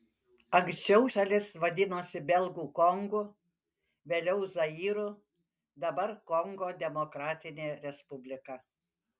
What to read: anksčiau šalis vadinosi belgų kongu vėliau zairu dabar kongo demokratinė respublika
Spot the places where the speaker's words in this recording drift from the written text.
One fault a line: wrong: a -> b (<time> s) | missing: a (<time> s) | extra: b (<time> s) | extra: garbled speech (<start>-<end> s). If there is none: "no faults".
no faults